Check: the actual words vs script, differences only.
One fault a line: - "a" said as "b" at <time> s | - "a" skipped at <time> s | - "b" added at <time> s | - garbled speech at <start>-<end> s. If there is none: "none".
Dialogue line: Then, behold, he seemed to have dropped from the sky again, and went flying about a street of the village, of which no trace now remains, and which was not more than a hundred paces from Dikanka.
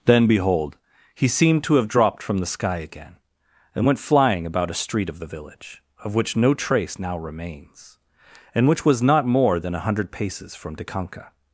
none